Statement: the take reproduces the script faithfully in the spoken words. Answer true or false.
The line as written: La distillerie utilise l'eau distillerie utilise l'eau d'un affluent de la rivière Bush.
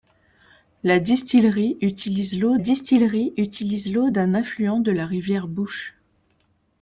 true